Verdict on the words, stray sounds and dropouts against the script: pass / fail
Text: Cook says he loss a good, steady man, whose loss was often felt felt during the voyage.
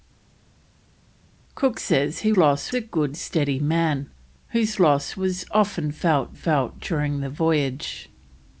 pass